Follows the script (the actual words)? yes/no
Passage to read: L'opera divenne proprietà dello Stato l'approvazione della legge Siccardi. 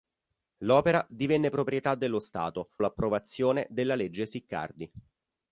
yes